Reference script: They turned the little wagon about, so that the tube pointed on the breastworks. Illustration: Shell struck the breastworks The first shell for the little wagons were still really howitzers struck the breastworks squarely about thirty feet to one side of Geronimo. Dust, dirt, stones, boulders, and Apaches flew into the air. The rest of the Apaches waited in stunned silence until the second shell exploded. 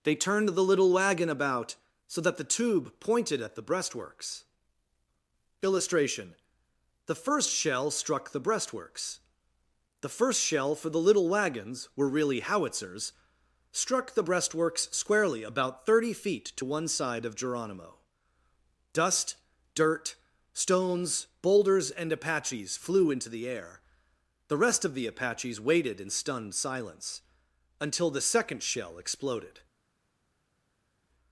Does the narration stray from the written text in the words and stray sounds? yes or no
yes